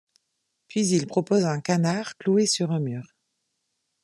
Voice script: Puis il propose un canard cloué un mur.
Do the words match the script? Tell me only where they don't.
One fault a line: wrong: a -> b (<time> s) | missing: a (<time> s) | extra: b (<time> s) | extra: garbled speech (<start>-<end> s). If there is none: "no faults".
extra: sur (2.5 s)